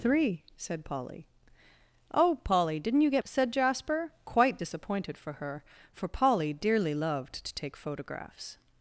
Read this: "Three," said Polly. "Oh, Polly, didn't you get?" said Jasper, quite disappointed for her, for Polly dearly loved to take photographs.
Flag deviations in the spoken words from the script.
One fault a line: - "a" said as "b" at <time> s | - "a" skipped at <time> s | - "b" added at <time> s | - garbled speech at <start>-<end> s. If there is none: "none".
none